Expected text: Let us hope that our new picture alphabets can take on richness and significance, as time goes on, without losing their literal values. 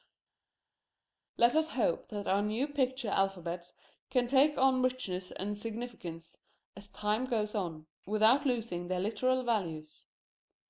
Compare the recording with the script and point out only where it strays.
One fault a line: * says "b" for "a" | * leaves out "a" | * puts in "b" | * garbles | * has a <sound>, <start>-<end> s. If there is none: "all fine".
all fine